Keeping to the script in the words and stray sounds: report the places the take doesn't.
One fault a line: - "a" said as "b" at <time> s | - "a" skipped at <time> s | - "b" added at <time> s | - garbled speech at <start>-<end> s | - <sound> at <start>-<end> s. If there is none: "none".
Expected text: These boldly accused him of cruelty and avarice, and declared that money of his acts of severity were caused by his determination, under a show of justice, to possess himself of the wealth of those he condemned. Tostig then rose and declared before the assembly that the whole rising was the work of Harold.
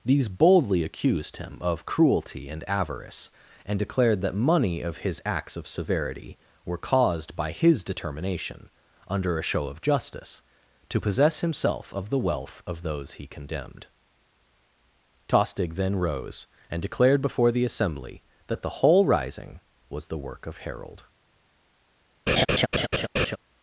- laugh at 22.3-23.4 s